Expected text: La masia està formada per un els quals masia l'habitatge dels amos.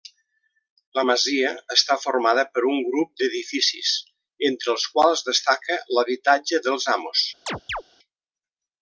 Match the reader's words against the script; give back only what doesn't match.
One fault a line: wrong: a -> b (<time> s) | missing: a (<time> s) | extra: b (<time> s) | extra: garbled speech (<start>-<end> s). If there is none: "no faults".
extra: grup d'edificis entre (2.9 s)
wrong: masia -> destaca (5.3 s)